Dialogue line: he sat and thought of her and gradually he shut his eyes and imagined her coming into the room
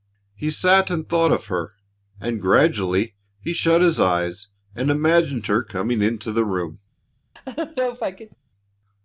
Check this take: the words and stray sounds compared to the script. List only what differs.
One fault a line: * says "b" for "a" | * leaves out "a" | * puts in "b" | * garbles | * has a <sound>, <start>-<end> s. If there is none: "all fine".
* has a laugh, 7.4-8.4 s